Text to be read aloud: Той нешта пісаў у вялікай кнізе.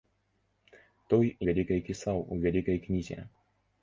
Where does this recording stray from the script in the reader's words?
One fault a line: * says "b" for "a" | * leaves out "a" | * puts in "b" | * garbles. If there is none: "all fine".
* says "вялікай" for "нешта"